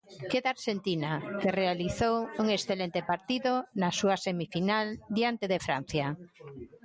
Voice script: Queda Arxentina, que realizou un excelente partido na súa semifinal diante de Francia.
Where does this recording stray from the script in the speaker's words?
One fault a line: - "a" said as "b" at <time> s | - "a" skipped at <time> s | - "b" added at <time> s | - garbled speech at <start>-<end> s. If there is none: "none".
none